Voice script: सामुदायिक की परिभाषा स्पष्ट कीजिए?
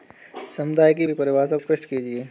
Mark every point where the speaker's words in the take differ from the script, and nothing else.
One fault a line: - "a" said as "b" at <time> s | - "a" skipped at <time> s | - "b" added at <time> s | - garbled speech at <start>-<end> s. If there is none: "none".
none